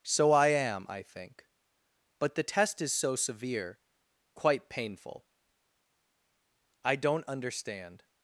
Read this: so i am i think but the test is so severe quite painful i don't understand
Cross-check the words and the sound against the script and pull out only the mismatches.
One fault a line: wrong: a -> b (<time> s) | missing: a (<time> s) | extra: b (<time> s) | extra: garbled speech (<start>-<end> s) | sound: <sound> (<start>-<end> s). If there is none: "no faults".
no faults